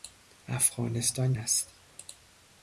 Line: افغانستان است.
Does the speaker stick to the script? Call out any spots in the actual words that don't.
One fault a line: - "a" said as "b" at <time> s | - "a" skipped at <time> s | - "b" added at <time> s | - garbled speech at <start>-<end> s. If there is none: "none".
none